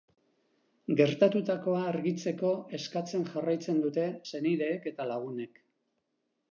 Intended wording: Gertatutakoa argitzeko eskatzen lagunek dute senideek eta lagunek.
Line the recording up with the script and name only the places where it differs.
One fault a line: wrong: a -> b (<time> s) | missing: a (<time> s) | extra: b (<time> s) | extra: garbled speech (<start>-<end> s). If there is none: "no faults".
wrong: lagunek -> jarraitzen (3.4 s)